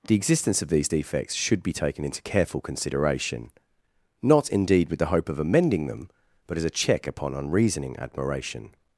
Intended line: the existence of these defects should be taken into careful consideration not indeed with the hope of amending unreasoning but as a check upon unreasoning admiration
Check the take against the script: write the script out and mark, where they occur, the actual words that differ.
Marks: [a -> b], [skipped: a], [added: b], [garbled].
the existence of these defects should be taken into careful consideration not indeed with the hope of amending [unreasoning -> them] but as a check upon unreasoning admiration